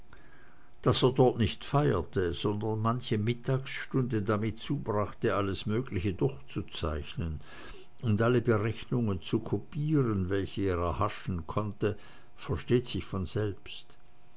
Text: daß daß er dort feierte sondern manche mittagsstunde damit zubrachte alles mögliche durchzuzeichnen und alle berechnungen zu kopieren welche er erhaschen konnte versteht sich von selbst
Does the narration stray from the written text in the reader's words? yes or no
yes